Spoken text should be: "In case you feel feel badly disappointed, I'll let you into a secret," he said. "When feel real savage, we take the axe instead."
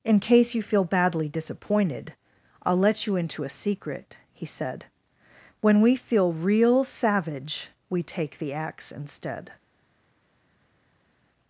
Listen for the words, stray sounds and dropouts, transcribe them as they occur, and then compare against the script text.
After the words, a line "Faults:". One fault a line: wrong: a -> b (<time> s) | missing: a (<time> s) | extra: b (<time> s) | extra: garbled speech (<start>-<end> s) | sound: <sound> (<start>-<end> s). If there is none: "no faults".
"In case you feel badly disappointed, I'll let you into a secret," he said. "When we feel real savage, we take the axe instead."
Faults:
missing: feel (0.8 s)
extra: we (5.8 s)